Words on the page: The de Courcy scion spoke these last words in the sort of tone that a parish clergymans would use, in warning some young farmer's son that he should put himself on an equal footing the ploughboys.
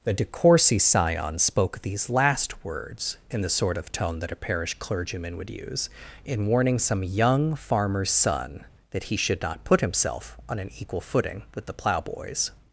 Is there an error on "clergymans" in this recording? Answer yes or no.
yes